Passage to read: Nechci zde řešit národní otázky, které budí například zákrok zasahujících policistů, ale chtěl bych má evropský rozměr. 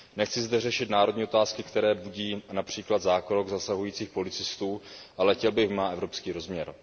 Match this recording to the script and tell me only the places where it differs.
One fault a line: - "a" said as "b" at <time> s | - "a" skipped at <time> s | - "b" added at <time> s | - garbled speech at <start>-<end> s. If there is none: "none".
none